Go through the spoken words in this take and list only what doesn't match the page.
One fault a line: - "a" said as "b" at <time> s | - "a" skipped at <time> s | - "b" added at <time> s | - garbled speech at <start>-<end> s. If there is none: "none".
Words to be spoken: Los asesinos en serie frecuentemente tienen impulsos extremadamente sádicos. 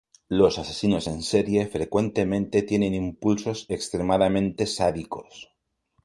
none